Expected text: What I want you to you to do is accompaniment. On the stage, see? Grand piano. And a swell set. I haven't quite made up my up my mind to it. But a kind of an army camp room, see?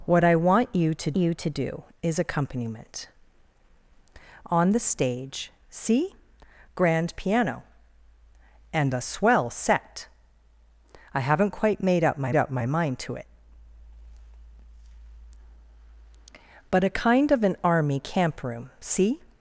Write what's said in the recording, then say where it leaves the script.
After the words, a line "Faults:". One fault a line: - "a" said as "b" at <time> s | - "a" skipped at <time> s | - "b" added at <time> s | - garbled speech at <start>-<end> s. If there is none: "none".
What I want you to you to do is accompaniment. On the stage, see? Grand piano. And a swell set. I haven't quite made up my up my mind to it. But a kind of an army camp room, see?
Faults:
none